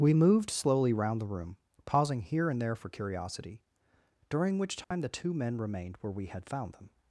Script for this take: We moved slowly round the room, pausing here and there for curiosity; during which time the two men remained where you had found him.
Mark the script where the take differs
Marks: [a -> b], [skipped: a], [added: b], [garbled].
We moved slowly round the room, pausing here and there for curiosity; during which time the two men remained where [you -> we] had found [him. -> them]